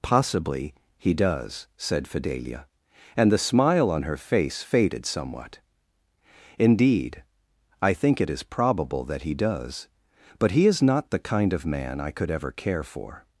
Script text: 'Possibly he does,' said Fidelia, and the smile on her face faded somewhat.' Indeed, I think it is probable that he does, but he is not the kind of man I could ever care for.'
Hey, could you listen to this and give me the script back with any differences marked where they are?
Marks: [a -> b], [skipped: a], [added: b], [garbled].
'Possibly he does,' said Fidelia, and the smile on her face faded somewhat.' Indeed, I think it is probable that he does, but he is not the kind of man I could ever care for.'